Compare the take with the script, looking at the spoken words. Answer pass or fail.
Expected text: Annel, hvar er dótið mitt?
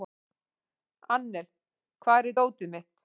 pass